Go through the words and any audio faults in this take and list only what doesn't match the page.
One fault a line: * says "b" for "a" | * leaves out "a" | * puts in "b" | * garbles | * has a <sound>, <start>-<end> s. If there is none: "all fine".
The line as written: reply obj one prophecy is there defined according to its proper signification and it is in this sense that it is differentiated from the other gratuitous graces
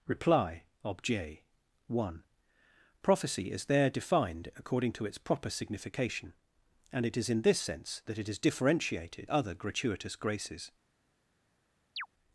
* leaves out "from the"
* has a chirp, 12.0-12.1 s